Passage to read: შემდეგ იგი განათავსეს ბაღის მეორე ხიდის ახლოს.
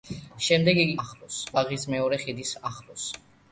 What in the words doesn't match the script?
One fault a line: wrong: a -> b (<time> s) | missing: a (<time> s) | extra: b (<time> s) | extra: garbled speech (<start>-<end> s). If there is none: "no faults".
wrong: განათავსეს -> ახლოს (1.1 s)